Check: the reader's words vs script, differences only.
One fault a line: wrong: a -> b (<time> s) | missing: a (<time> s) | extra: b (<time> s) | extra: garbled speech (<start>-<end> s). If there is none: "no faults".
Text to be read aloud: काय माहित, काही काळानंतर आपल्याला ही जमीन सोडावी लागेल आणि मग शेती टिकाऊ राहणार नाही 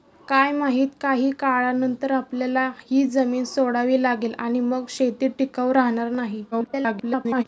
extra: garbled speech (6.5-7.4 s)